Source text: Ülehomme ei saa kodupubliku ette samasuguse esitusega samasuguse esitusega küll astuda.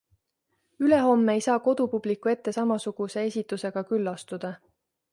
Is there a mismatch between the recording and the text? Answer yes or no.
yes